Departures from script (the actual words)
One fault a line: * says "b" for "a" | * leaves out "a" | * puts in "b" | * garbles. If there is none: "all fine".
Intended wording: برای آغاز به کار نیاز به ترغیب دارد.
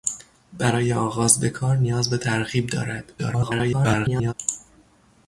* garbles